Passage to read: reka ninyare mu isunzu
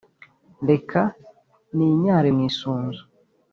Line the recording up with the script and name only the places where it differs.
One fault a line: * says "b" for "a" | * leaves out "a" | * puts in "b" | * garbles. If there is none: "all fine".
all fine